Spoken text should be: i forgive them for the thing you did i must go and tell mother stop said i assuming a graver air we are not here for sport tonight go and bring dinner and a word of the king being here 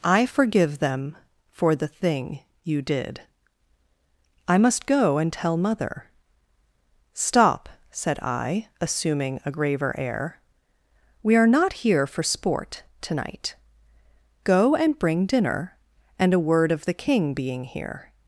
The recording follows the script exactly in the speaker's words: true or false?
true